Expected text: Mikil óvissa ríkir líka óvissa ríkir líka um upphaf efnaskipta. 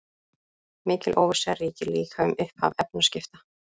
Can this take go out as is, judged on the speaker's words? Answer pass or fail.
fail